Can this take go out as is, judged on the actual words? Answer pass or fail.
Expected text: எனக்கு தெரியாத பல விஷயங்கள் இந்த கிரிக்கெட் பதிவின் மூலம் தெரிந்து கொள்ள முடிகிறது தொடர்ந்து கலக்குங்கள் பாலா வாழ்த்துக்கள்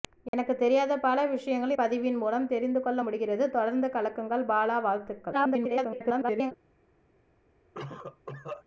fail